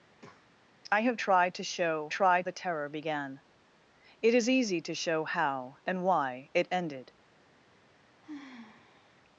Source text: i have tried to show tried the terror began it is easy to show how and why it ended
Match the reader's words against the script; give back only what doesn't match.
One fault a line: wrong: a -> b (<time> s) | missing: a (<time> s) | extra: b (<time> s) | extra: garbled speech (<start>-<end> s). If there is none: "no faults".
no faults